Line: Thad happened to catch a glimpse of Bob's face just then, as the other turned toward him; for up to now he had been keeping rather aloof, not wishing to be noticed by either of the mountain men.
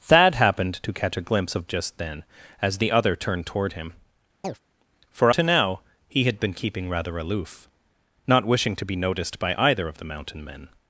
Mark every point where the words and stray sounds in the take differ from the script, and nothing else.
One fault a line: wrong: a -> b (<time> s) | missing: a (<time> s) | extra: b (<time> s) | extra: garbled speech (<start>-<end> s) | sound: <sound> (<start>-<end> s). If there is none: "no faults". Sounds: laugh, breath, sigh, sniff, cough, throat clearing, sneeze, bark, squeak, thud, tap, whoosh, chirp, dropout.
missing: Bob's face (1.7 s)
sound: chirp (4.4-4.6 s)
missing: up (5.3 s)